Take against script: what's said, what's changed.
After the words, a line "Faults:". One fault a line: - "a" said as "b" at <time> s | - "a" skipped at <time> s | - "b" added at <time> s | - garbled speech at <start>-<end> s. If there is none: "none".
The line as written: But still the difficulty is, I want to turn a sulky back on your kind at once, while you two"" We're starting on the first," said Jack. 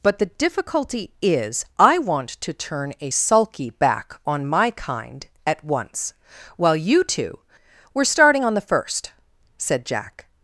But the difficulty is, I want to turn a sulky back on my kind at once, while you two"" We're starting on the first," said Jack.
Faults:
- "still" skipped at 0.2 s
- "your" said as "my" at 4.5 s